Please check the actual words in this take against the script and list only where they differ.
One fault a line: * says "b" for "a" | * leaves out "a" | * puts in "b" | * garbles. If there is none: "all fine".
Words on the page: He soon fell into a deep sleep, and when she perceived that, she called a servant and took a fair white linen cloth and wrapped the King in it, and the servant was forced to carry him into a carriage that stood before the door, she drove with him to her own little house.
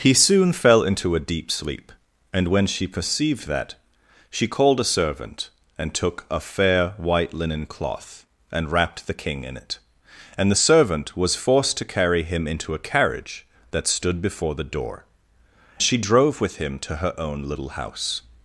all fine